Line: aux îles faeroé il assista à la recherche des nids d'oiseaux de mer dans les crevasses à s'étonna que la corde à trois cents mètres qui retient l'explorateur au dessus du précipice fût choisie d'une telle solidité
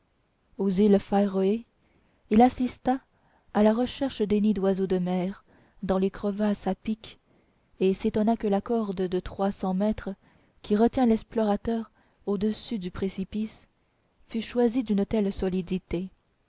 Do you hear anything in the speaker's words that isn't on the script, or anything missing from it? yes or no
yes